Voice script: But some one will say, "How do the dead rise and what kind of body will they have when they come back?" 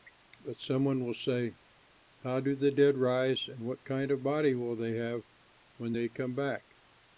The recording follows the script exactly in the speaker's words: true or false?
true